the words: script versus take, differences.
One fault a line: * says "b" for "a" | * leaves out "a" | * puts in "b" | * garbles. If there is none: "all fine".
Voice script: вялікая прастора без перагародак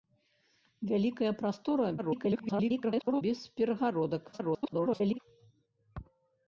* garbles
* garbles